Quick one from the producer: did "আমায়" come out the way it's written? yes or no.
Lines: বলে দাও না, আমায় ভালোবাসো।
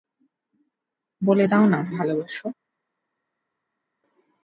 no